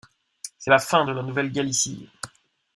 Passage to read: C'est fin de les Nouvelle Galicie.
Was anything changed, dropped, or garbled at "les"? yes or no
yes